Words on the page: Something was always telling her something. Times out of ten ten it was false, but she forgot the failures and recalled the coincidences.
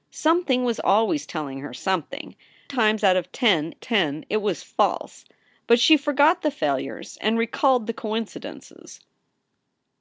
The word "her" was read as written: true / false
true